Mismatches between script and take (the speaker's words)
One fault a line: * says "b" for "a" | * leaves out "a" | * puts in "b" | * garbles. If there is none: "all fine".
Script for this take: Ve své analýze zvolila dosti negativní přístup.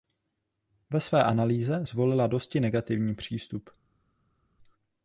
all fine